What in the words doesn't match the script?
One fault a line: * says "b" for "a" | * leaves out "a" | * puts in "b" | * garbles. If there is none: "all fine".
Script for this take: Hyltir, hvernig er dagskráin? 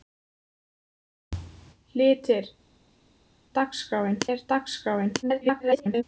* says "dagskráin" for "hvernig"
* garbles